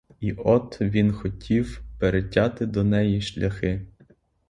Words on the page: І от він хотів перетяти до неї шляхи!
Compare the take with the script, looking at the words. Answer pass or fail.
pass